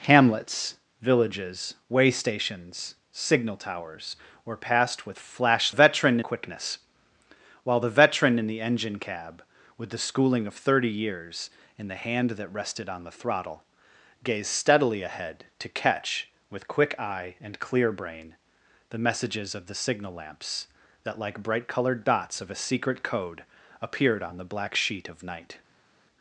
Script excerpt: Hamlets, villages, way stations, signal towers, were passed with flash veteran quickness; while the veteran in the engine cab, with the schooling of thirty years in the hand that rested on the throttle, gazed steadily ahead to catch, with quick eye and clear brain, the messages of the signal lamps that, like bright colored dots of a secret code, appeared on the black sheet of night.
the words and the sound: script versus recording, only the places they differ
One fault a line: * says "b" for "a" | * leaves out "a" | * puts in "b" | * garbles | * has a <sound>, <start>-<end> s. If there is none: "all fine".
all fine